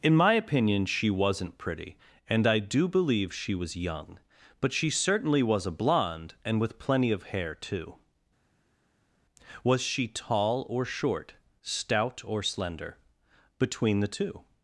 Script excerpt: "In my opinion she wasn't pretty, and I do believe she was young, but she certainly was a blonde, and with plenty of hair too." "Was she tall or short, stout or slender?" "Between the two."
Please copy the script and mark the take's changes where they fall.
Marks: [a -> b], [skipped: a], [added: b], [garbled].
"In my opinion she wasn't pretty, and I do believe she was young, but she certainly was a blonde, and with plenty of hair too." "Was she tall or short, stout or slender?" "Between the two."